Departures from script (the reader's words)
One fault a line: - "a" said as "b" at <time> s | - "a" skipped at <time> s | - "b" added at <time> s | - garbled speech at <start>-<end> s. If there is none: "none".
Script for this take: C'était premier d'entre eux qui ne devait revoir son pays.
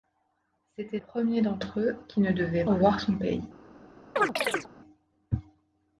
none